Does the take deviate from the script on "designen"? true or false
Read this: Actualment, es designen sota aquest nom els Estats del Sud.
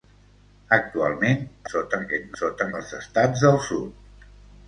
true